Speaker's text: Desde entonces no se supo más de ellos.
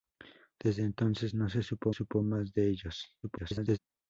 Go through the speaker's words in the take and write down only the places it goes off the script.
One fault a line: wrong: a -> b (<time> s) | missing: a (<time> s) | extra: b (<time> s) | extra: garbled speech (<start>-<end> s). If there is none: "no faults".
extra: supo (1.9 s)
extra: garbled speech (3.2-3.8 s)